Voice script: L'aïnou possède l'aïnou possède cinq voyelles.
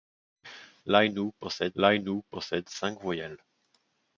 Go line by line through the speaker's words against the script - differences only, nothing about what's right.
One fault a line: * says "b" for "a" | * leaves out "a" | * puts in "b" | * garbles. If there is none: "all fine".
all fine